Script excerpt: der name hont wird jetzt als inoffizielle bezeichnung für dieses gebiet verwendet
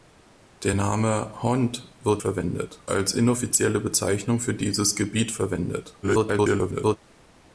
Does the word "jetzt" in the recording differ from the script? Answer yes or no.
yes